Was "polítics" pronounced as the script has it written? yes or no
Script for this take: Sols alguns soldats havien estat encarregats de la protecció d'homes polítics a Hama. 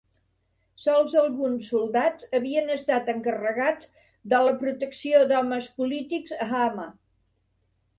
yes